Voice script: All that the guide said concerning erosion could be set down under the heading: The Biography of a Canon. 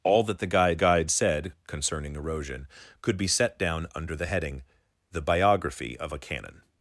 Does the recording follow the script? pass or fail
fail